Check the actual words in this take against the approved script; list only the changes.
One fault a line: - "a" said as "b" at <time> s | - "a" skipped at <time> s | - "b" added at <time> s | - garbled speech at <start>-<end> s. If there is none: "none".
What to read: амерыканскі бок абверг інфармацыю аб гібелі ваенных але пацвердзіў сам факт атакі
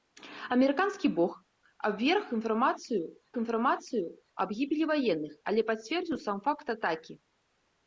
- "інфармацыю" added at 3.4 s